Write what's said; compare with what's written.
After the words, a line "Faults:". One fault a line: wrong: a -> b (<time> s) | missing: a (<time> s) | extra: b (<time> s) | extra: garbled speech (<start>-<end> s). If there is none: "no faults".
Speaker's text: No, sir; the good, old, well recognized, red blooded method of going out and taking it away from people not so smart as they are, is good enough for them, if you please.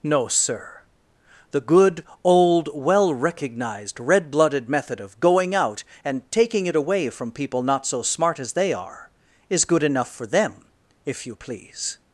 No, sir; the good, old, well recognized, red blooded method of going out and taking it away from people not so smart as they are, is good enough for them, if you please.
Faults:
no faults